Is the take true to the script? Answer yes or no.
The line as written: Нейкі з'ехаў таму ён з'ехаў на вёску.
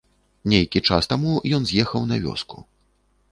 no